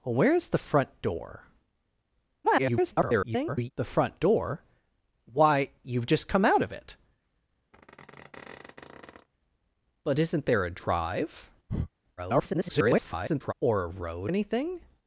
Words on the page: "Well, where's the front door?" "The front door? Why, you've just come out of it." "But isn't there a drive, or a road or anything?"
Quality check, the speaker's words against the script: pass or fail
fail